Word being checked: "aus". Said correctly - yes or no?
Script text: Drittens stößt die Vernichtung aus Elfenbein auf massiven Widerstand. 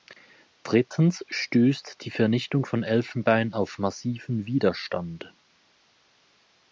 no